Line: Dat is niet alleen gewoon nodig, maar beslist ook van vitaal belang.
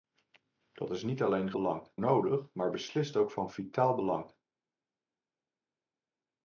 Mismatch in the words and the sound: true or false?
true